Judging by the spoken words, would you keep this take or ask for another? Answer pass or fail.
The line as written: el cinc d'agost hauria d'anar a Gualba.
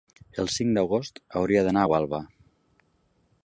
pass